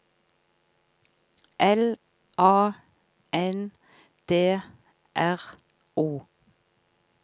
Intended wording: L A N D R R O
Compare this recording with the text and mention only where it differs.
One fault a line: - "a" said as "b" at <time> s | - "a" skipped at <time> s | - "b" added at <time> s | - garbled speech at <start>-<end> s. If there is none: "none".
- "R" skipped at 5.4 s